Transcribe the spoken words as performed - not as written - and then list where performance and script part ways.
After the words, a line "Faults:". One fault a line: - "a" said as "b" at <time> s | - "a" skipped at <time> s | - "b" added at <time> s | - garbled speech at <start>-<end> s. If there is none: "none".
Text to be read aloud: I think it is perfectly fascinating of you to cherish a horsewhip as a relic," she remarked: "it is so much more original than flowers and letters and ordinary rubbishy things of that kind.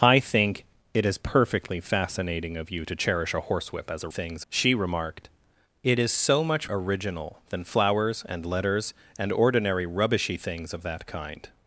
I think it is perfectly fascinating of you to cherish a horsewhip as a things," she remarked: "it is so much original than flowers and letters and ordinary rubbishy things of that kind.
Faults:
- "relic" said as "things" at 4.1 s
- "more" skipped at 6.7 s